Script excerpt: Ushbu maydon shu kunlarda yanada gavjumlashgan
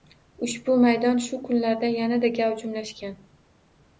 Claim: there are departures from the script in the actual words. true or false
false